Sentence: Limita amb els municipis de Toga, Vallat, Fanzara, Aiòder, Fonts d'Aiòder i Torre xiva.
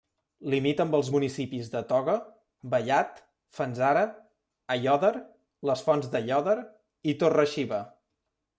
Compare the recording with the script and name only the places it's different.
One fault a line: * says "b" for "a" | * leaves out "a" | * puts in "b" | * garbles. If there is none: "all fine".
* puts in "les"